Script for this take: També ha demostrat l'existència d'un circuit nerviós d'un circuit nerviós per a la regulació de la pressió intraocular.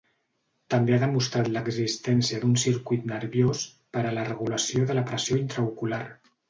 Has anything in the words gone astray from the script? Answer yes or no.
yes